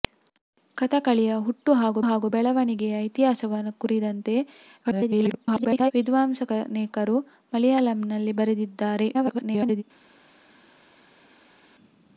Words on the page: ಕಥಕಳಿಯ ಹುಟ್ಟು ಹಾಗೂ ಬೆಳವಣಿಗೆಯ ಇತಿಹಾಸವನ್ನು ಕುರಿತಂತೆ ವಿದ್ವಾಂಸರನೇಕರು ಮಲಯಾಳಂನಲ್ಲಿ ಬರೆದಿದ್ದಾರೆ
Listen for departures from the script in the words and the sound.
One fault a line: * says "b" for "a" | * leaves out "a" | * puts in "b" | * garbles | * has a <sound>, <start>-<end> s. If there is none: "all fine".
* puts in "ಹಾಗೂ"
* garbles
* garbles